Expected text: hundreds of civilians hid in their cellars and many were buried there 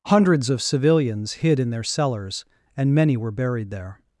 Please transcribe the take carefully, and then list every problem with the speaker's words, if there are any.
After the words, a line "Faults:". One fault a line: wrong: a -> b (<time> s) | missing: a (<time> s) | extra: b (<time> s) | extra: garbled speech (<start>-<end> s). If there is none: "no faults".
hundreds of civilians hid in their cellars and many were buried there
Faults:
no faults